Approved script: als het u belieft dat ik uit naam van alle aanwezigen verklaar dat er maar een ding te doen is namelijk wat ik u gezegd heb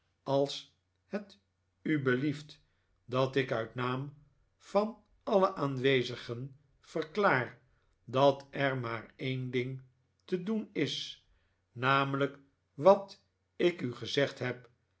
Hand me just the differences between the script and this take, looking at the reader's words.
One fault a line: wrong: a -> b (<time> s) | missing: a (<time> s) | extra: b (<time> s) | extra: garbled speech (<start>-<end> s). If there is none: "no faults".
no faults